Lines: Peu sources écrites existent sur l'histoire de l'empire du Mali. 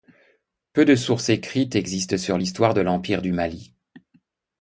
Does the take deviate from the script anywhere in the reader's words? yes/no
yes